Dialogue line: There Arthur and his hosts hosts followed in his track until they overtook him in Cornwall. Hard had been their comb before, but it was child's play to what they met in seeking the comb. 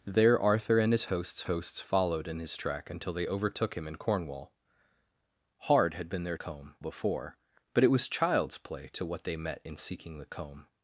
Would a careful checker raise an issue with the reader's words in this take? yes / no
no